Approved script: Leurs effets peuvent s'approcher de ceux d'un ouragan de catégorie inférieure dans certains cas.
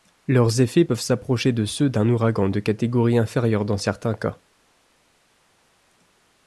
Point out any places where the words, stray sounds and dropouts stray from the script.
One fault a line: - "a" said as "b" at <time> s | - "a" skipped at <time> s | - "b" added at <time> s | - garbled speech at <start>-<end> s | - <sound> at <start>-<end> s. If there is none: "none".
none